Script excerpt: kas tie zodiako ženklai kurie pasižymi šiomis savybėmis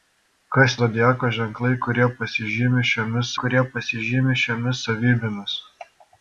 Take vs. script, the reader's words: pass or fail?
fail